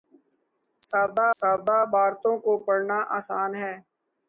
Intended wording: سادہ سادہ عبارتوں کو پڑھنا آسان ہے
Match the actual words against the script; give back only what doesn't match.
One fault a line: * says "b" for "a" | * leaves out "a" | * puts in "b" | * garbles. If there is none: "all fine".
all fine